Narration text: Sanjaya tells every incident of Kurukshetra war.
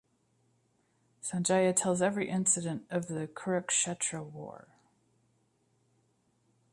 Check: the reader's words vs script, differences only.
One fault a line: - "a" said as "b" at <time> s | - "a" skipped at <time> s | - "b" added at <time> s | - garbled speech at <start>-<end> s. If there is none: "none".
- "the" added at 3.0 s